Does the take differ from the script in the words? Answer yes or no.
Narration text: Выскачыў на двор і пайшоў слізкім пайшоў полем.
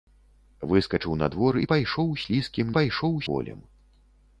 no